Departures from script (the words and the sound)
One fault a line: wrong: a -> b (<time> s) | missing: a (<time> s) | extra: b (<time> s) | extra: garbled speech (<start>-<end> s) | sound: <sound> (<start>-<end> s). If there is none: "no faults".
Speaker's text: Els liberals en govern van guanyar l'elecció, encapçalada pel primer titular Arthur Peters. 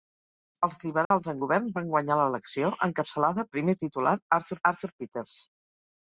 sound: dropout (1.0-1.1 s)
missing: pel (3.4 s)
extra: Arthur (4.7 s)